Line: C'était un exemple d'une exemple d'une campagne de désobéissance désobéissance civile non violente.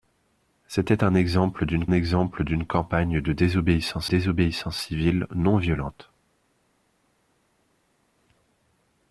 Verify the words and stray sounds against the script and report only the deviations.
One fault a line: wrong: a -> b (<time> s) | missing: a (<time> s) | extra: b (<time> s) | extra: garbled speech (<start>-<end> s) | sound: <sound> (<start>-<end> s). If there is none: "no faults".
no faults